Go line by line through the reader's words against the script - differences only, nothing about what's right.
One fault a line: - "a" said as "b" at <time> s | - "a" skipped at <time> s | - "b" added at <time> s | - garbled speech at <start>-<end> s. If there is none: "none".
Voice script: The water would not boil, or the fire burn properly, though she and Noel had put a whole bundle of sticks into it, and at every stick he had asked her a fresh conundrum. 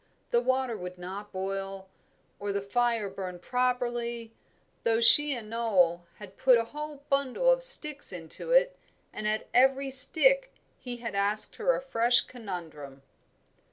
none